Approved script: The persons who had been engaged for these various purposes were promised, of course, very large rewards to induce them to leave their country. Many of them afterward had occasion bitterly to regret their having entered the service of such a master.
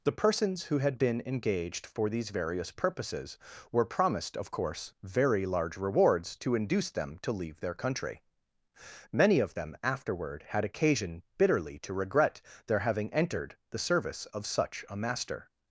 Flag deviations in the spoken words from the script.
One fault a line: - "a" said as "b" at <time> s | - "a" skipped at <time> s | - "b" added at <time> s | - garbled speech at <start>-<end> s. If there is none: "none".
none